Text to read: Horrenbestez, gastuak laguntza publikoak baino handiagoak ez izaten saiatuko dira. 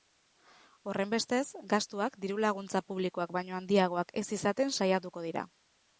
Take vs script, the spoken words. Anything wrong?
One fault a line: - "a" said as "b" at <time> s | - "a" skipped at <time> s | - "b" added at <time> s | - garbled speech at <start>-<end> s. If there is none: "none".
- "diru" added at 2.2 s